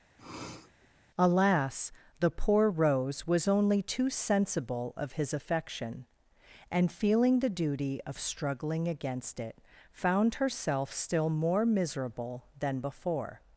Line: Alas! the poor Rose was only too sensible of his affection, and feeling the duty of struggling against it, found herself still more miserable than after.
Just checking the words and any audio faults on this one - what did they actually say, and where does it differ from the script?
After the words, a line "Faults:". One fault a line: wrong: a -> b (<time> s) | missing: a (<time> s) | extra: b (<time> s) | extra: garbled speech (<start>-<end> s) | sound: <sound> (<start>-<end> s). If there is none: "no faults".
Alas! the poor Rose was only too sensible of his affection, and feeling the duty of struggling against it, found herself still more miserable than before.
Faults:
sound: sniff (0.2-0.9 s)
wrong: after -> before (12.8 s)